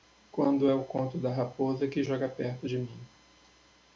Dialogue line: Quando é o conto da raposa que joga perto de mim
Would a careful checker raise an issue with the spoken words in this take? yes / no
no